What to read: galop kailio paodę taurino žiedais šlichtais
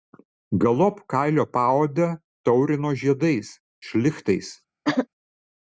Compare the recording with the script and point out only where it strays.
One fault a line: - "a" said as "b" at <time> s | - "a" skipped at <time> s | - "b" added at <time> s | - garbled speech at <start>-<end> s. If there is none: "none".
none